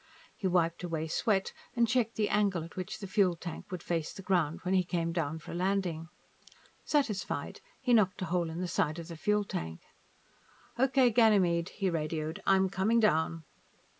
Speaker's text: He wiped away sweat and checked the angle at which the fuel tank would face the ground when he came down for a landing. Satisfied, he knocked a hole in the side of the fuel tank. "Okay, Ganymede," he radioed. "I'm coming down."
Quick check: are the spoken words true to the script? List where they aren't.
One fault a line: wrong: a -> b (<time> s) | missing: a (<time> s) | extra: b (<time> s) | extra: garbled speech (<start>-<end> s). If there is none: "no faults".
no faults